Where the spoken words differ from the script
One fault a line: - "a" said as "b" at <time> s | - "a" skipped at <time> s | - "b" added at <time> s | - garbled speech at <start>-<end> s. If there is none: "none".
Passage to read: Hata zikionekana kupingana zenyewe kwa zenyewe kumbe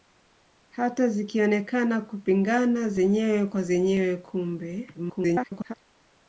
- garbled speech at 4.9-5.7 s